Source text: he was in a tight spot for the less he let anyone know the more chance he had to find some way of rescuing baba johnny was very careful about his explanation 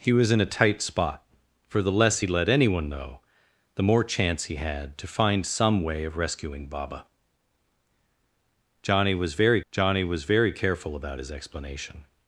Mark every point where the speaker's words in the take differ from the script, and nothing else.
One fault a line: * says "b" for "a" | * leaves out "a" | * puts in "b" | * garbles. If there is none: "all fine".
* puts in "johnny was very"